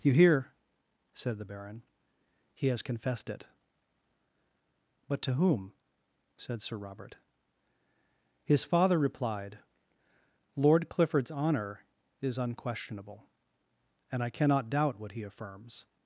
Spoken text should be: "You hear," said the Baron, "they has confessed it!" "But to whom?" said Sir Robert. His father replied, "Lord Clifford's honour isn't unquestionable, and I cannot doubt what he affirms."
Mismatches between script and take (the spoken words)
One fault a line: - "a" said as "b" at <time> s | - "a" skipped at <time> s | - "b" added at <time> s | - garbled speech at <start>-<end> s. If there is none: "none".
- "they" said as "he" at 2.5 s
- "isn't" said as "is" at 12.2 s